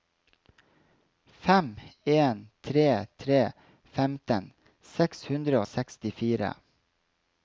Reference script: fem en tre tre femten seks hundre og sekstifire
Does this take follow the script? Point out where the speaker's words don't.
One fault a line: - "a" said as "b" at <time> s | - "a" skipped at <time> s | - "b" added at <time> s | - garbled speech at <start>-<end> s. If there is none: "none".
none